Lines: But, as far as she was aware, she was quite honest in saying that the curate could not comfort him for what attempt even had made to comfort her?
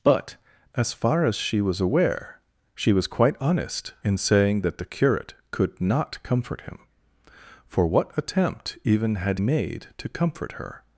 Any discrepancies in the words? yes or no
no